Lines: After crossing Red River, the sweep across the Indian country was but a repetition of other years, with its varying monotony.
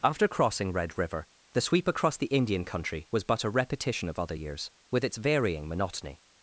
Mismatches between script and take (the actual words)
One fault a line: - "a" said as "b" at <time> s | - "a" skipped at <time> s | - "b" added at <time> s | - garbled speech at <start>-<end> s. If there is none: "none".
none